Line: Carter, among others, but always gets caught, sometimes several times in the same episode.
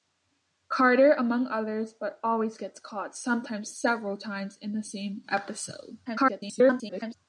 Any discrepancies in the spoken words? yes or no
yes